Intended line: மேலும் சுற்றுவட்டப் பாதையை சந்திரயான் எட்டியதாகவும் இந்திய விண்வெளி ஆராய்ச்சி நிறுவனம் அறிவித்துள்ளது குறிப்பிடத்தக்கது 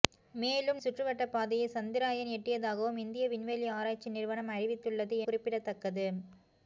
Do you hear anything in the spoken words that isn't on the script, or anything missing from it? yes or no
no